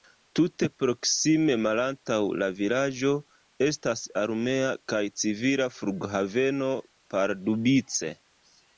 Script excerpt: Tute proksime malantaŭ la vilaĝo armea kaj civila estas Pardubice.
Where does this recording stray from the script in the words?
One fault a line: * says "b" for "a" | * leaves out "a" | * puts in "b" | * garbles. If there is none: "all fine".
* puts in "estas"
* says "flughaveno" for "estas"